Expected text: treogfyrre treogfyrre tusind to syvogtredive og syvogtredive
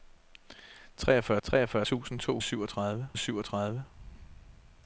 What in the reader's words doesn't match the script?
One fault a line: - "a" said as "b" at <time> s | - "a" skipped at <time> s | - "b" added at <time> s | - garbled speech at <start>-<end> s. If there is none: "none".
none